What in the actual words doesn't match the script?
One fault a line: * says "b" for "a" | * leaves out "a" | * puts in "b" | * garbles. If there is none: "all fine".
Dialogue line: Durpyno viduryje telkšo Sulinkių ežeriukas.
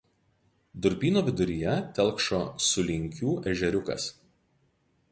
all fine